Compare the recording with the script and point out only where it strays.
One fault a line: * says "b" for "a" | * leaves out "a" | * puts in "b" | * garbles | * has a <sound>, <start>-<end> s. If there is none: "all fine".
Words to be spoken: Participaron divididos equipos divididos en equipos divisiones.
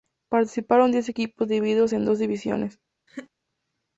* says "diez" for "divididos"
* says "dos" for "equipos"
* has a laugh, 3.1-3.3 s